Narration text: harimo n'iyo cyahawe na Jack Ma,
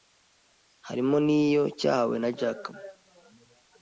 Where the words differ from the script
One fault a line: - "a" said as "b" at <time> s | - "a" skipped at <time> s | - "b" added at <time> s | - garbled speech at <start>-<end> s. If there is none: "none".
none